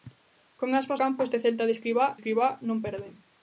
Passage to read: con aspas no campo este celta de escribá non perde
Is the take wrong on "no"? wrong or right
wrong